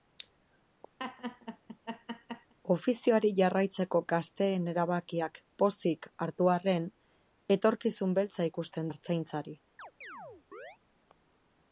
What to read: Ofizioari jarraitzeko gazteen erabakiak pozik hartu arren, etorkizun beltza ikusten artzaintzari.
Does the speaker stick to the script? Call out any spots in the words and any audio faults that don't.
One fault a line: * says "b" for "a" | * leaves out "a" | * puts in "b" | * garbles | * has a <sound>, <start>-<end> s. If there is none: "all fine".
* has a laugh, 1.0-2.5 s
* has a chirp, 9.8-10.8 s